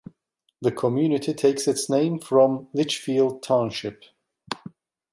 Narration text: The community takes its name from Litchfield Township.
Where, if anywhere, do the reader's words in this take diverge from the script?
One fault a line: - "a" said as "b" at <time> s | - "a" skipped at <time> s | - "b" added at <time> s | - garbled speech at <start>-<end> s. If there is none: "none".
none